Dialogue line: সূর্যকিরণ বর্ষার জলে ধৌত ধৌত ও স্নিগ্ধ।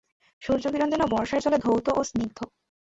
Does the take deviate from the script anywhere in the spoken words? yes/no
yes